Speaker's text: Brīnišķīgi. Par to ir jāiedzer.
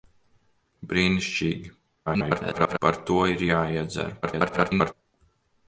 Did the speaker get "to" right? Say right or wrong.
right